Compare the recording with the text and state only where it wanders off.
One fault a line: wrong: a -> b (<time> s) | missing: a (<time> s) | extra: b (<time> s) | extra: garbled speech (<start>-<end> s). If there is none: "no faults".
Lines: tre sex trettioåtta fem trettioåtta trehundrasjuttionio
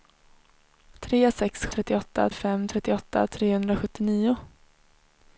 no faults